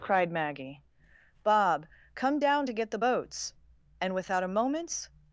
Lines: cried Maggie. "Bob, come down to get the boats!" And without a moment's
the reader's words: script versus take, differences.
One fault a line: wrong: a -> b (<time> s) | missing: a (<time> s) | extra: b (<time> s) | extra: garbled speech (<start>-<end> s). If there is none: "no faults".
no faults